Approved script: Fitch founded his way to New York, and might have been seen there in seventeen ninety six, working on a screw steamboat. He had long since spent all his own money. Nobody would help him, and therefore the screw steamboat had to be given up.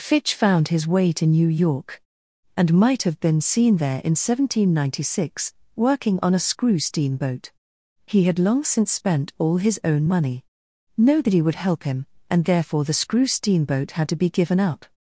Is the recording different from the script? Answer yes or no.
yes